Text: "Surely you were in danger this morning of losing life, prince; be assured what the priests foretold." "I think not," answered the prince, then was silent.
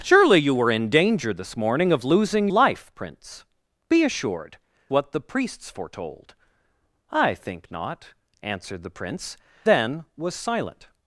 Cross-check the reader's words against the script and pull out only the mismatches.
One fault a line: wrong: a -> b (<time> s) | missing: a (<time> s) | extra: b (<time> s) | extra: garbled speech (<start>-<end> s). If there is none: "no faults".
no faults